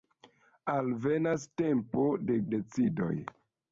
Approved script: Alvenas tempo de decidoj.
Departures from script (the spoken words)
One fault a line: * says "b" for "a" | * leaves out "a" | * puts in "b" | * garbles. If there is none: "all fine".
all fine